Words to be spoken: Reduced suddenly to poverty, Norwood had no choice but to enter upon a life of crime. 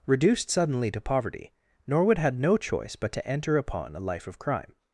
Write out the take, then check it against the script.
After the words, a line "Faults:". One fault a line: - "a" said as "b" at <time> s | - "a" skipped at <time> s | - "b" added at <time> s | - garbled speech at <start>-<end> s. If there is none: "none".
Reduced suddenly to poverty, Norwood had no choice but to enter upon a life of crime.
Faults:
none